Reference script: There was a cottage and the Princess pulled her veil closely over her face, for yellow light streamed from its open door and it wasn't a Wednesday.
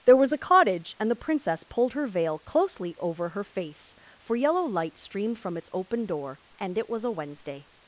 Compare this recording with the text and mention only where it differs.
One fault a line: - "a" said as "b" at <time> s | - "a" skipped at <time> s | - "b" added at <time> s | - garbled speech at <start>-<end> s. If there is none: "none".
- "wasn't" said as "was" at 6.9 s